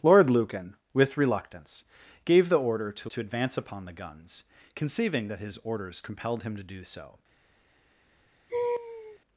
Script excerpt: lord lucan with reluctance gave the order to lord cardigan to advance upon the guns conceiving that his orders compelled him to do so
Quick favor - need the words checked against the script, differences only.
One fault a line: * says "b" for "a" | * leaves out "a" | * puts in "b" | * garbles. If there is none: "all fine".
* leaves out "lord cardigan"